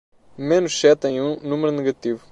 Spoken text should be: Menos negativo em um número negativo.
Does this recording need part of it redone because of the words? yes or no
yes